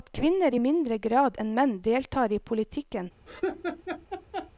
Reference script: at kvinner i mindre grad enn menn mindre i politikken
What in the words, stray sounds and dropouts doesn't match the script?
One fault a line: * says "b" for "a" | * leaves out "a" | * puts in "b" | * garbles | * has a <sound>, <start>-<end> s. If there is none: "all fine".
* says "deltar" for "mindre"
* has a laugh, 3.3-4.5 s